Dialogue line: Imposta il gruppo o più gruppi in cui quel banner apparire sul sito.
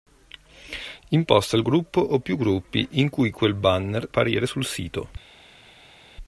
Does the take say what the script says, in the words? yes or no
yes